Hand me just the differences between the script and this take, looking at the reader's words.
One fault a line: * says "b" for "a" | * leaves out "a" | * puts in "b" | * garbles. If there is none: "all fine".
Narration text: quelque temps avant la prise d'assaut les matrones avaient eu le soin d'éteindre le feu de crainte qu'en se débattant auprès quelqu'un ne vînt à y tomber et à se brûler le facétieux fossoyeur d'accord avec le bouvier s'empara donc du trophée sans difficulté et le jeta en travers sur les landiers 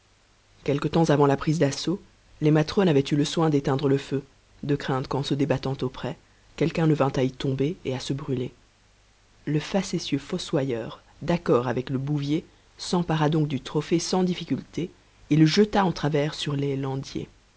all fine